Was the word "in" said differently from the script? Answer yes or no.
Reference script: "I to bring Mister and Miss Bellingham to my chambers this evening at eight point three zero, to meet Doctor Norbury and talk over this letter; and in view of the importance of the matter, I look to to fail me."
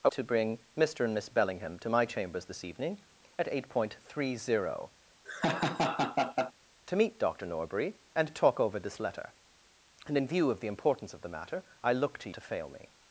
no